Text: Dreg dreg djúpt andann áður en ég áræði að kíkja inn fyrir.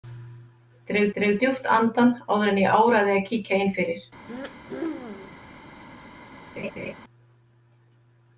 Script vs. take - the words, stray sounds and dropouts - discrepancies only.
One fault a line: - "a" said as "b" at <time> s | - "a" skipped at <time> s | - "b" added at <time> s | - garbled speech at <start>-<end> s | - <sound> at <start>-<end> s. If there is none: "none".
- throat clearing at 4.3-5.4 s
- laugh at 6.6-6.9 s